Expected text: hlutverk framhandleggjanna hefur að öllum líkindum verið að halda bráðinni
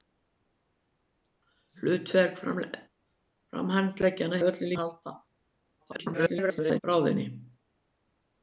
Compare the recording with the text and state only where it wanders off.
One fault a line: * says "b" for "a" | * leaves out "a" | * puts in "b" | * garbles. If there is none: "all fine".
* leaves out "hefur"
* leaves out "líkindum verið"
* garbles